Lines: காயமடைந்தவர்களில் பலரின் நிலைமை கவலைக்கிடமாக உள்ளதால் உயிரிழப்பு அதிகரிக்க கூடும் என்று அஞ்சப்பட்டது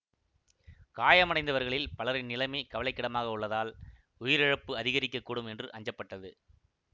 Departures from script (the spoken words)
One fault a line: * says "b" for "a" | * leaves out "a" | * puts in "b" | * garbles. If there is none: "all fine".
all fine